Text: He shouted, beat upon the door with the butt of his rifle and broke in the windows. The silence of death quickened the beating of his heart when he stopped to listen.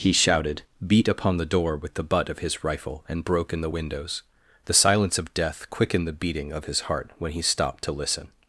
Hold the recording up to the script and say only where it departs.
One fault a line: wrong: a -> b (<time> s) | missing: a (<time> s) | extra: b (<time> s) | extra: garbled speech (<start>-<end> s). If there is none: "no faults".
no faults